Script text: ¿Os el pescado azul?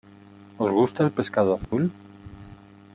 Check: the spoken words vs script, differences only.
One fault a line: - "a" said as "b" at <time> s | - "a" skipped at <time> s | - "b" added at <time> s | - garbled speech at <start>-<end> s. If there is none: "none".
- "gusta" added at 0.7 s